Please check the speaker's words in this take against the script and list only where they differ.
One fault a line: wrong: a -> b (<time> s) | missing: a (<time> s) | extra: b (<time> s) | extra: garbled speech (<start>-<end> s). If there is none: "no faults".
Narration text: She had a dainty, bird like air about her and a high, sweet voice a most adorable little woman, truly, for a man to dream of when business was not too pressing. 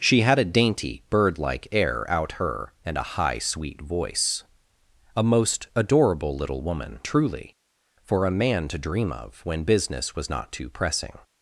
wrong: about -> out (2.1 s)